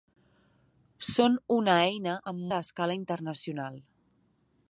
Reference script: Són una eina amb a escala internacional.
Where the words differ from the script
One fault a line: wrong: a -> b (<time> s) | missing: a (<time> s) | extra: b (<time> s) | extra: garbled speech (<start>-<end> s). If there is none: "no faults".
no faults